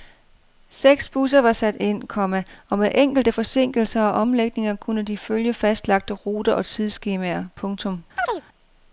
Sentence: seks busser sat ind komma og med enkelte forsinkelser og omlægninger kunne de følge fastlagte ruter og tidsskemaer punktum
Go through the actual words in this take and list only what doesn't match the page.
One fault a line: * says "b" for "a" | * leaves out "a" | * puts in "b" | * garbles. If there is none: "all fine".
* puts in "var"